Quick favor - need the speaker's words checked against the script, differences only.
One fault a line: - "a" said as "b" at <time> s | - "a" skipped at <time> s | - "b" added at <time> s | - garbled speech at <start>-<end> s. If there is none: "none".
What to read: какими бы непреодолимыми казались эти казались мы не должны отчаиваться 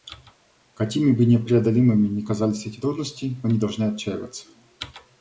- "ни" added at 2.1 s
- "казались" said as "трудности" at 2.8 s